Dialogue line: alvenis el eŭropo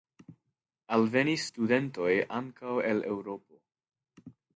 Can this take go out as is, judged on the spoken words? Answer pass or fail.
fail